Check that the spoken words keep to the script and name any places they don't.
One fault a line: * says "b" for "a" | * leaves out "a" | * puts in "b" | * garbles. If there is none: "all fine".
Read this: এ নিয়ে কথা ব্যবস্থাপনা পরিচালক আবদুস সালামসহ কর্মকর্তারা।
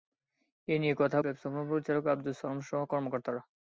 all fine